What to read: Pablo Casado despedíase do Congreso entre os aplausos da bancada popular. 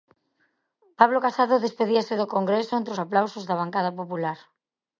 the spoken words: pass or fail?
pass